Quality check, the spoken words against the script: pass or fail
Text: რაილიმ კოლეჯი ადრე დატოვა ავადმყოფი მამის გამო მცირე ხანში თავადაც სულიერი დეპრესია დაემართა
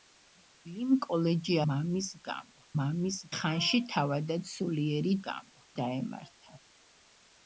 fail